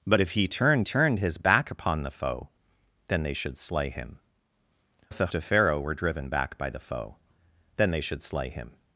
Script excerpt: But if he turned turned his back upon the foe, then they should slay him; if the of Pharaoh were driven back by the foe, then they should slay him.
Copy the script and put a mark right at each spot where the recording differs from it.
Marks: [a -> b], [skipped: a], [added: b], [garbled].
But if he turned turned his back upon the foe, then they should slay him; if the of Pharaoh were driven back by the foe, then they should slay him.